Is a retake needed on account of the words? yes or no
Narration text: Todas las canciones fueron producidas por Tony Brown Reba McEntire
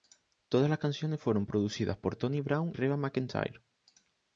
no